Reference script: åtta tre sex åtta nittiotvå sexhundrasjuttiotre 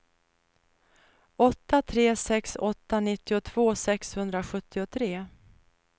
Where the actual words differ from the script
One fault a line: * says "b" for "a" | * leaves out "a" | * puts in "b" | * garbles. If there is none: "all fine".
all fine